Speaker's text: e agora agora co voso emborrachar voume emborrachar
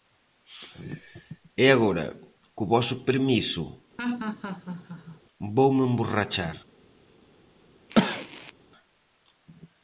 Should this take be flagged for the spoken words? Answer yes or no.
yes